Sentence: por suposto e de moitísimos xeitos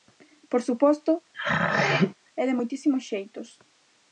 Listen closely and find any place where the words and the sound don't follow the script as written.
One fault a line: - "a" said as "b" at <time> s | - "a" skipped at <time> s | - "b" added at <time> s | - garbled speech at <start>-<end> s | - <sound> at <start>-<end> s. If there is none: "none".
- throat clearing at 1.3-2.1 s